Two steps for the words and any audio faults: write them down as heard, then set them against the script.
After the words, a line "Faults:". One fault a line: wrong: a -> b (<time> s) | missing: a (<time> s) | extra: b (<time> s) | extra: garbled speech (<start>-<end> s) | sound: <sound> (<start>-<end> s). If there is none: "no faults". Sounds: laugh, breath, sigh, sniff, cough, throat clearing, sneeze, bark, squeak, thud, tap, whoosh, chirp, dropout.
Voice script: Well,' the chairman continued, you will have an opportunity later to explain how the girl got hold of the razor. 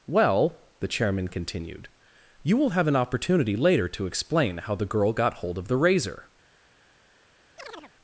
Well,' the chairman continued, you will have an opportunity later to explain how the girl got hold of the razor.
Faults:
sound: chirp (7.6-7.9 s)